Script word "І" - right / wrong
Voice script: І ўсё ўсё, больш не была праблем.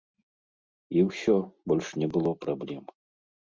right